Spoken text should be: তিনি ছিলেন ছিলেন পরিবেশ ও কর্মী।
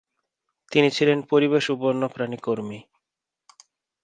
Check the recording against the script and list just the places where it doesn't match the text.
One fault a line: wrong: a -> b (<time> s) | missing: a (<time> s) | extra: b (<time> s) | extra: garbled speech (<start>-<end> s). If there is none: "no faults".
missing: ছিলেন (1.2 s)
extra: বন্যপ্রাণী (1.8 s)